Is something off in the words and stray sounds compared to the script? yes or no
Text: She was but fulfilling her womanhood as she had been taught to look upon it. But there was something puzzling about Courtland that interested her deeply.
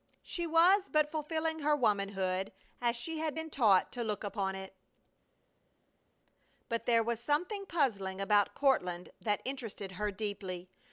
no